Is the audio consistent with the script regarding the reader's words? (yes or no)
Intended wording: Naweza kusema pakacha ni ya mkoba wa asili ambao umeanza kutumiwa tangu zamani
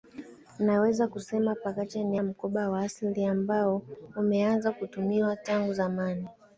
yes